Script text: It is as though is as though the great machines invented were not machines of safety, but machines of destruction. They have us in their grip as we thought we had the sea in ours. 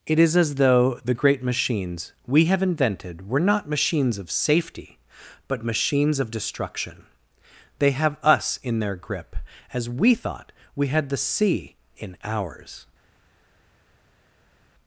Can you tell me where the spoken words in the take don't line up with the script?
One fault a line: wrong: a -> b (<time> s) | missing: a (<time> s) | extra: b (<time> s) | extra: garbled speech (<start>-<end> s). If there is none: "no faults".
missing: is as though (1.0 s)
extra: we have (2.2 s)